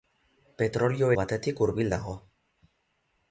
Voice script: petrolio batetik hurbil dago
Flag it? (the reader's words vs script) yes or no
no